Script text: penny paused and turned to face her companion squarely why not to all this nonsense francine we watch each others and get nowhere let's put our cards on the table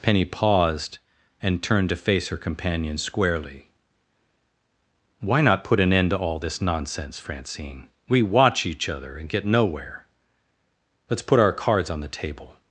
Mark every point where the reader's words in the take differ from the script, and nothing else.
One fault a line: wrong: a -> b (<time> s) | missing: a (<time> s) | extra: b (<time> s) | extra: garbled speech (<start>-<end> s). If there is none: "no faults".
extra: put an end (5.6 s)
wrong: others -> other (8.9 s)